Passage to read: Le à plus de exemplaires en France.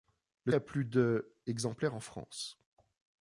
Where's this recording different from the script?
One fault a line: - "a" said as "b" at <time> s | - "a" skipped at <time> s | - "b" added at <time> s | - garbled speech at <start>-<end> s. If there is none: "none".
none